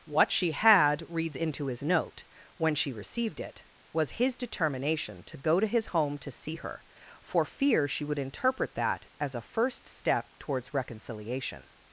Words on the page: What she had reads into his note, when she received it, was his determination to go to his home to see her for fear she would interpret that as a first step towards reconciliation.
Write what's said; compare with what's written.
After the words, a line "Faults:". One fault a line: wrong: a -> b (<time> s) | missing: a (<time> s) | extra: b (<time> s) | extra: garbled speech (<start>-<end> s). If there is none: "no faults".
What she had reads into his note, when she received it, was his determination to go to his home to see her for fear she would interpret that as a first step towards reconciliation.
Faults:
no faults